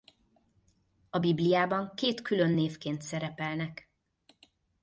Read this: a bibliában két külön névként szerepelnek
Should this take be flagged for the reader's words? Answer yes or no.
no